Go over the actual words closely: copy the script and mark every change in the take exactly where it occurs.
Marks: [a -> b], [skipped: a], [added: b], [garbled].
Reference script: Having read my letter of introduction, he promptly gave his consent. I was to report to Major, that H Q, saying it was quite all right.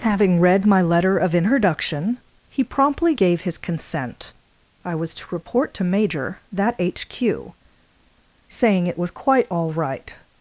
Having read my letter of introduction, he promptly gave his consent. I was to report to Major, that H Q, saying it was quite all right.